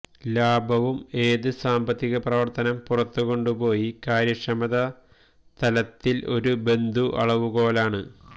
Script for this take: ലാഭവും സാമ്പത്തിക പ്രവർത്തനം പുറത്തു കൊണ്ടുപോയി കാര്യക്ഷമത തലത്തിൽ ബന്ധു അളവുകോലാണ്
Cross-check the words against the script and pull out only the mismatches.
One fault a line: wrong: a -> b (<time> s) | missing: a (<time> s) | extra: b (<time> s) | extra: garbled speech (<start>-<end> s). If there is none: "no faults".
extra: ഏത് (1.2 s)
extra: ഒരു (6.4 s)